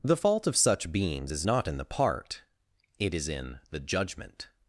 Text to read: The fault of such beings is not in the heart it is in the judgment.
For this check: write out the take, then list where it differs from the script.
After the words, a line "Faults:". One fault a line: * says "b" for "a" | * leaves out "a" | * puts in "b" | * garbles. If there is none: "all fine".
The fault of such beings is not in the part it is in the judgment.
Faults:
* says "part" for "heart"